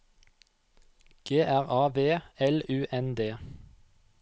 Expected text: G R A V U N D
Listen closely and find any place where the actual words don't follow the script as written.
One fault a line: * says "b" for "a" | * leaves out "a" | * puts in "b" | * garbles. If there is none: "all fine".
* puts in "L"